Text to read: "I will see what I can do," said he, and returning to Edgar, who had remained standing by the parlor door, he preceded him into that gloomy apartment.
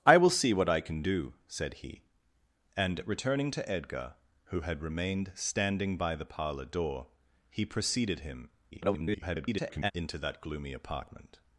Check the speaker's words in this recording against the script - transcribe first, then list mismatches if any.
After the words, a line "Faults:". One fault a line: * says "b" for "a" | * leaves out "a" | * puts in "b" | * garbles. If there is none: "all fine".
"I will see what I can do," said he, and returning to Edgar, who had remained standing by the parlor door, he preceded him [garbled] into that gloomy apartment.
Faults:
* garbles